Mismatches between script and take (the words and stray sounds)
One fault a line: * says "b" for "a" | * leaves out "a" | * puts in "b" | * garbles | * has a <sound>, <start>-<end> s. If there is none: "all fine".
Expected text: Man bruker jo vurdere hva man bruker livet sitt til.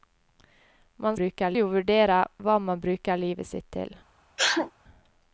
* has a sneeze, 4.4-4.7 s